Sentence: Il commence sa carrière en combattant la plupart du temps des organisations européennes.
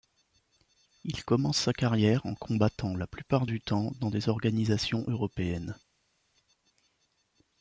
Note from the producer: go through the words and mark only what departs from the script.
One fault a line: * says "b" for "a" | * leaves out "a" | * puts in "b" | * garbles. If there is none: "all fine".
* puts in "dans"